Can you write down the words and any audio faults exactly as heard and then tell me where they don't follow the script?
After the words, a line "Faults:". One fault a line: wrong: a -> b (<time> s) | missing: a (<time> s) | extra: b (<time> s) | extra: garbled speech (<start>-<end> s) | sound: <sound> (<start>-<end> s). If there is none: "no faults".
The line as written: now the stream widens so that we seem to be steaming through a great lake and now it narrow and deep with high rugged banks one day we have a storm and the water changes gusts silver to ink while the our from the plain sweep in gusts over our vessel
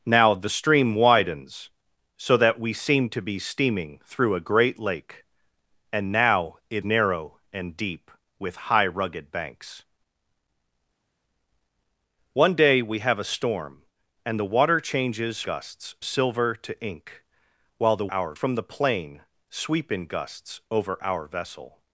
now the stream widens so that we seem to be steaming through a great lake and now it narrow and deep with high rugged banks one day we have a storm and the water changes gusts silver to ink while the our from the plain sweep in gusts over our vessel
Faults:
no faults